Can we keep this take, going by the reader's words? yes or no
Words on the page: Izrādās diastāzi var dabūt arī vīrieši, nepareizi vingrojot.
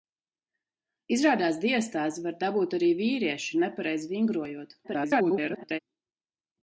no